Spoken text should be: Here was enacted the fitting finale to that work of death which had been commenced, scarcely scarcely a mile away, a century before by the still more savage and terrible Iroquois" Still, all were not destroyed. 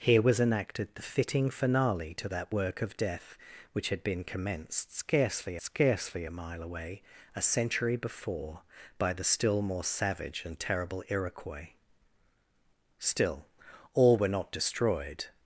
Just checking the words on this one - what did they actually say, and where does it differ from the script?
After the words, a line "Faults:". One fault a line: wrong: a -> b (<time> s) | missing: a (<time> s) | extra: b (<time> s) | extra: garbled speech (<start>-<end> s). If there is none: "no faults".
Here was enacted the fitting finale to that work of death which had been commenced, scarcely scarcely a mile away, a century before by the still more savage and terrible Iroquois" Still, all were not destroyed.
Faults:
no faults